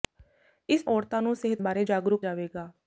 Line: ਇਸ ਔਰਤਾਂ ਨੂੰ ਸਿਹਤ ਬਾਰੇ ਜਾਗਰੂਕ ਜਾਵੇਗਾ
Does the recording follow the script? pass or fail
pass